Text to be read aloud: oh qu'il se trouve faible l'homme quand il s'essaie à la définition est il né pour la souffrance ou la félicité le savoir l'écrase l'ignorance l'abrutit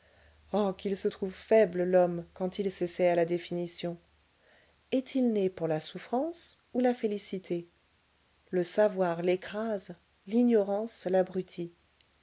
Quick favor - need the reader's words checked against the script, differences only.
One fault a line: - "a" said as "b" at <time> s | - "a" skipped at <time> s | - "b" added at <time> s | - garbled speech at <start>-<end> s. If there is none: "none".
none